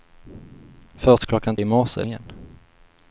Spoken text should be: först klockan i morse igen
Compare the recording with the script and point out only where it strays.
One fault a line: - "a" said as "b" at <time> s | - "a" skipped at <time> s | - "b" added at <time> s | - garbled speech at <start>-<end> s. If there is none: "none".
none